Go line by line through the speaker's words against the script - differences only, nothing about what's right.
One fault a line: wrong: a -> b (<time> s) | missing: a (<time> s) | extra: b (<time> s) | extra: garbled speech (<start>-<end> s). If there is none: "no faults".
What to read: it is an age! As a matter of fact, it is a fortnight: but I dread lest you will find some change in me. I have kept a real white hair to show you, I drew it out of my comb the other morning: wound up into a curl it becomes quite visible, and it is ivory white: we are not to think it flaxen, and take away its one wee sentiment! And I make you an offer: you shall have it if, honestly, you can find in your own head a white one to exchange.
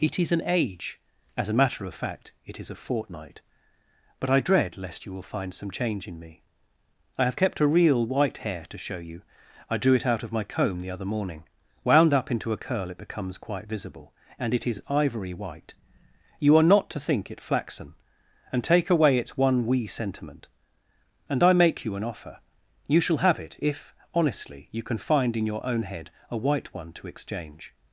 wrong: we -> you (16.4 s)